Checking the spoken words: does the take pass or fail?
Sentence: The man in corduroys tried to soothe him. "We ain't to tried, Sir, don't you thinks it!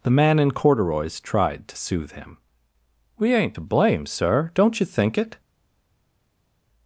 fail